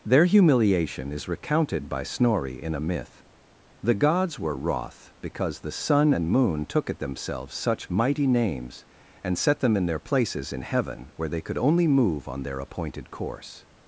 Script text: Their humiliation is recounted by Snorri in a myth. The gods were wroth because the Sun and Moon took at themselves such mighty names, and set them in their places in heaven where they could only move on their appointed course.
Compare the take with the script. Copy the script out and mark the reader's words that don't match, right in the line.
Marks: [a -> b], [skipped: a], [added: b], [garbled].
Their humiliation is recounted by Snorri in a myth. The gods were wroth because the Sun and Moon took at themselves such mighty names, and set them in their places in heaven where they could only move on their appointed course.